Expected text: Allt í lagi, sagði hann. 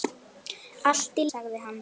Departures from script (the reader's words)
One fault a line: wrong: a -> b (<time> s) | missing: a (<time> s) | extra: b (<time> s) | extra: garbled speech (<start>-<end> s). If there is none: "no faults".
missing: lagi (1.3 s)